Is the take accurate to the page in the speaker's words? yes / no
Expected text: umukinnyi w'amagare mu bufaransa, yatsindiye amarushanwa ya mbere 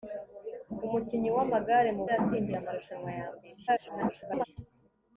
no